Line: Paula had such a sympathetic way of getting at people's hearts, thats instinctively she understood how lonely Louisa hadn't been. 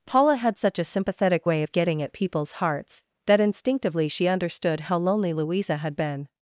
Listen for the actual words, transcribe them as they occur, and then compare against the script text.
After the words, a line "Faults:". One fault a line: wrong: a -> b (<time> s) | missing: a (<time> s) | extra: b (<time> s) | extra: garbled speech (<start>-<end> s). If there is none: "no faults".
Paula had such a sympathetic way of getting at people's hearts, that instinctively she understood how lonely Louisa had been.
Faults:
wrong: thats -> that (3.3 s)
wrong: hadn't -> had (5.8 s)